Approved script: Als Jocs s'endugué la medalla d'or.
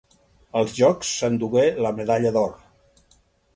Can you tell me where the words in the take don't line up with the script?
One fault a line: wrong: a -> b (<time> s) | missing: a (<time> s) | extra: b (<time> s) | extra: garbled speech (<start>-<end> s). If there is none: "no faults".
no faults